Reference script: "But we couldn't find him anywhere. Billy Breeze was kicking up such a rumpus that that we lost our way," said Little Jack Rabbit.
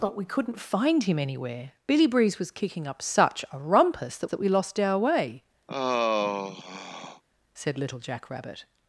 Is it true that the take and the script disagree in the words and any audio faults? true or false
true